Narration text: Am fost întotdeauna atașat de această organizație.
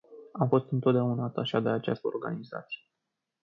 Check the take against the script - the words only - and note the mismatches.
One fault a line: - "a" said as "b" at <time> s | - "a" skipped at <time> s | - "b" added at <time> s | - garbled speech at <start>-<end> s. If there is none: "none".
none